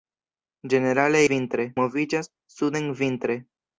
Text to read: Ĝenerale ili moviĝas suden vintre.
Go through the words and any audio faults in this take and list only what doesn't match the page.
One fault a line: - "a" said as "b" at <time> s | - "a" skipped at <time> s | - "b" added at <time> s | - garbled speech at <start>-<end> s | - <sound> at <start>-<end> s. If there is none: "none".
- "ili" said as "vintre" at 1.3 s